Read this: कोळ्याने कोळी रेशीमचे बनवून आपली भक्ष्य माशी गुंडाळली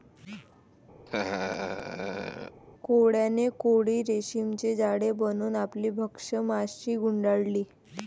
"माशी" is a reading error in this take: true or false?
false